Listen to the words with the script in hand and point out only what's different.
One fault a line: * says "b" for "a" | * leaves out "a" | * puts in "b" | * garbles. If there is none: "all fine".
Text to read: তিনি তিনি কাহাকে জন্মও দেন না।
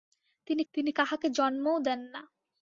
all fine